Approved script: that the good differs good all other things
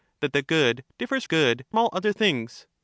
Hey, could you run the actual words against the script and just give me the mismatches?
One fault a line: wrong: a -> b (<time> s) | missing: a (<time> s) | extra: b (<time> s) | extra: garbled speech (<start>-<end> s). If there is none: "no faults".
no faults